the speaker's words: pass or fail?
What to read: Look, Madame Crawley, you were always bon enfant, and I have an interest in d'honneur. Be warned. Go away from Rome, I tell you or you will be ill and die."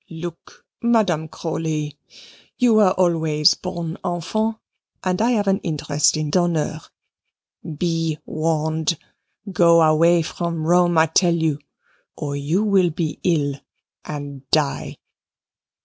pass